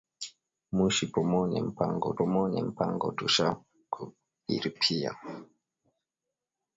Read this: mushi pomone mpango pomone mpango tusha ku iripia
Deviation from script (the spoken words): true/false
false